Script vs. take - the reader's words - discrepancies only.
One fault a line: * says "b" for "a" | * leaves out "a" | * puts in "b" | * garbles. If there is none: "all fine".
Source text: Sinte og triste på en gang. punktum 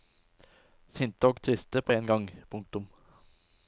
all fine